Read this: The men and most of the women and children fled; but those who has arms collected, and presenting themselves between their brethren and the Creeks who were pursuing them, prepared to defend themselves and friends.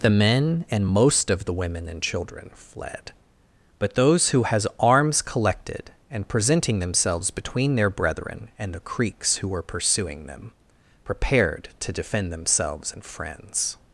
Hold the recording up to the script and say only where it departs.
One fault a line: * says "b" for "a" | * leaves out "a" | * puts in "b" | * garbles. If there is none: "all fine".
all fine